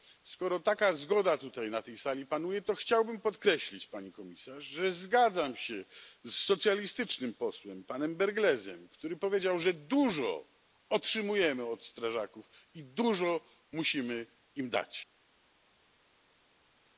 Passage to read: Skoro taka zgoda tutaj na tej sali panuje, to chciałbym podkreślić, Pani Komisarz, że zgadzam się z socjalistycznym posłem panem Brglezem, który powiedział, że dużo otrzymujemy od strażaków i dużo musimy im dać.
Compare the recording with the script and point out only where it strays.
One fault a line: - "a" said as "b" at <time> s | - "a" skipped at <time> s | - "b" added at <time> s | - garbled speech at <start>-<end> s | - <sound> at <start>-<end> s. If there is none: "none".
none